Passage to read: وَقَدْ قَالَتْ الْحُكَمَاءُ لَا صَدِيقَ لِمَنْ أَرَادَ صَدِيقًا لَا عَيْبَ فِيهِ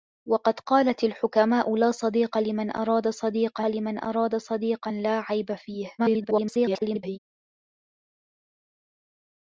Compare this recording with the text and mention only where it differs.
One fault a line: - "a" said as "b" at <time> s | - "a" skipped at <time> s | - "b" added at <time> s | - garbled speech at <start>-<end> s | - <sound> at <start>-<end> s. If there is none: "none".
- "لِمَنْ أَرَادَ صَدِيقًا" added at 3.6 s
- garbled speech at 6.0-7.2 s